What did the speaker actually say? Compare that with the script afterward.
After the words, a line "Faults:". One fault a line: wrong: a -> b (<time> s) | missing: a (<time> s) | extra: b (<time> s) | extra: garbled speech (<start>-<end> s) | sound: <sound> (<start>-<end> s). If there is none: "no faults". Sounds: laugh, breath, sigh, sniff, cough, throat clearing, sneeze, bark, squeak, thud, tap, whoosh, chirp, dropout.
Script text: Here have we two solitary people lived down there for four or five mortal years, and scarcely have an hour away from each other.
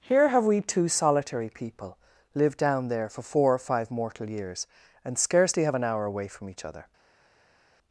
Here have we two solitary people lived down there for four or five mortal years, and scarcely have an hour away from each other.
Faults:
no faults